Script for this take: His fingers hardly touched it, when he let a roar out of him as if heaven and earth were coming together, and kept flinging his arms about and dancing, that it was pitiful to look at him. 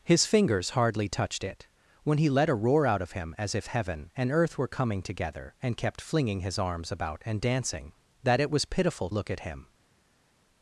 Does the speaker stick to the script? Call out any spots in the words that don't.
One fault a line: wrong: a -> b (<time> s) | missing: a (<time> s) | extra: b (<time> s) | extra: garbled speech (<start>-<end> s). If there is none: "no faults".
missing: to (9.1 s)